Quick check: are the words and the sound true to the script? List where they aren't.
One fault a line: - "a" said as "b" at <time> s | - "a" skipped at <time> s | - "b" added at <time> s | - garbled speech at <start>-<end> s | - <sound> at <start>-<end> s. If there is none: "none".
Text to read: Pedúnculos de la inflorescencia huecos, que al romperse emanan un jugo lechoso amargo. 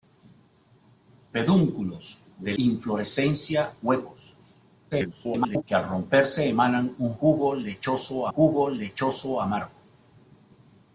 - "la" skipped at 2.5 s
- garbled speech at 4.9-5.6 s
- "jugo lechoso" added at 8.3 s